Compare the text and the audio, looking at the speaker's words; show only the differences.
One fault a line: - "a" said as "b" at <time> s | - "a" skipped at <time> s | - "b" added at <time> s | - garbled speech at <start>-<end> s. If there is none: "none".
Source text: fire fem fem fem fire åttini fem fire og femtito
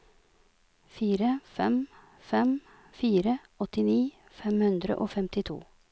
- "fem" skipped at 2.5 s
- "fire" said as "hundre" at 4.7 s